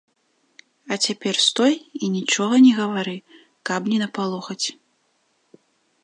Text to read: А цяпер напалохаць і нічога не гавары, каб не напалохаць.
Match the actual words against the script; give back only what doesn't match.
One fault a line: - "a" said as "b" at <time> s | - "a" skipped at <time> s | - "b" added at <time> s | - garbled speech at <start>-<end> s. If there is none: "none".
- "напалохаць" said as "стой" at 1.5 s